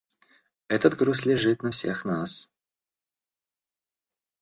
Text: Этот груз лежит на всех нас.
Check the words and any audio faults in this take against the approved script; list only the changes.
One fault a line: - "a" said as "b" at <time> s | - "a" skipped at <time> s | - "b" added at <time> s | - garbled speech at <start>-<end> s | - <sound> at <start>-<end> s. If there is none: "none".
none